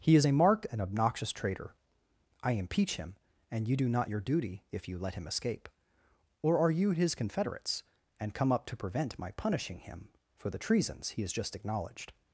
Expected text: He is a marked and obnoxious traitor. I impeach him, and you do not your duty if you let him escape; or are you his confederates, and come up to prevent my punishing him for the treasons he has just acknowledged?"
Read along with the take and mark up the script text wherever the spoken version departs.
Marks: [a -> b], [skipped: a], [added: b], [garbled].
He is a marked and obnoxious traitor. I impeach him, and you do not your duty if you let him escape; or are you his confederates, and come up to prevent my punishing him for the treasons he has just acknowledged?"